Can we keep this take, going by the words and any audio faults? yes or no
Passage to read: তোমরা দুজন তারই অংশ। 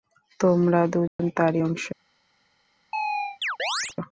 no